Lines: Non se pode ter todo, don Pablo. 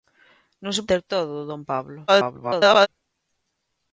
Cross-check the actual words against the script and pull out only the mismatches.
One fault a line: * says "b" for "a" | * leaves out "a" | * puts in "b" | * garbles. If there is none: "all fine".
* leaves out "pode"
* garbles